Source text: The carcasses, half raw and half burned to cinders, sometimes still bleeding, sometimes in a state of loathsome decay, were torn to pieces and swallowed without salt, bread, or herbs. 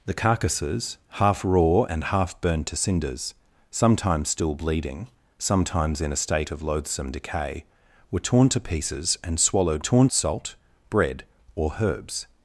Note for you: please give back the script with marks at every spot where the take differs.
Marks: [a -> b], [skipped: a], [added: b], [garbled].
The carcasses, half raw and half burned to cinders, sometimes still bleeding, sometimes in a state of loathsome decay, were torn to pieces and swallowed [without -> torn] salt, bread, or herbs.